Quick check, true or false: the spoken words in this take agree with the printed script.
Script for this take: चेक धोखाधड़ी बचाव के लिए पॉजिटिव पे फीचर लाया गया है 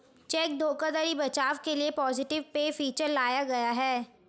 true